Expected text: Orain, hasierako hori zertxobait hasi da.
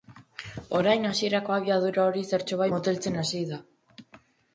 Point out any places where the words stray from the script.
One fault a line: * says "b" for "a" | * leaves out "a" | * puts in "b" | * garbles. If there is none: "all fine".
* puts in "abiadura"
* puts in "moteltzen"